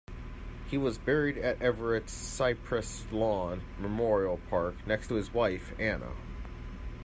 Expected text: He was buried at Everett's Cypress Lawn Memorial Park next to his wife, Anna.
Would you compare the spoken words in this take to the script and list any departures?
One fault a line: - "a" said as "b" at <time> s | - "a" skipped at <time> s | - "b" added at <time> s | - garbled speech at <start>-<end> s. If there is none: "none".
none